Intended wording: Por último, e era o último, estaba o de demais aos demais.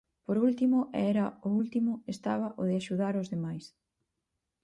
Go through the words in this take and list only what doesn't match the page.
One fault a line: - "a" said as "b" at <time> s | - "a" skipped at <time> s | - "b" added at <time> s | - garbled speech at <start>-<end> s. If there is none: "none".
- "demais" said as "axudar" at 2.8 s